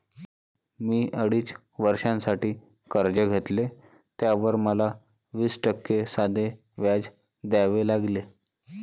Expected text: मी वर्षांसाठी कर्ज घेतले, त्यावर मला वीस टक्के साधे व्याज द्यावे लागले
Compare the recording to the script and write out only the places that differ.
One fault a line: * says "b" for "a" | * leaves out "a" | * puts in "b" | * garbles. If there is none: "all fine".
* puts in "अडीच"